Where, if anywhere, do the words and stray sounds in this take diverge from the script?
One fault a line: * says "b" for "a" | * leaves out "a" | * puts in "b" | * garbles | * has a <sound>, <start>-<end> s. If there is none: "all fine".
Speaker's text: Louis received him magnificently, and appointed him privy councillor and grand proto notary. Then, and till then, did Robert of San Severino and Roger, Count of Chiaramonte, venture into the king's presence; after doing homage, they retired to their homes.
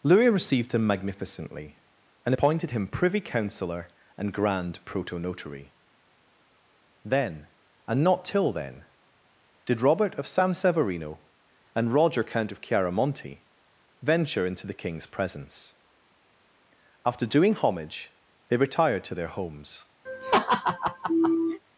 * puts in "not"
* has a laugh, 20.1-21.6 s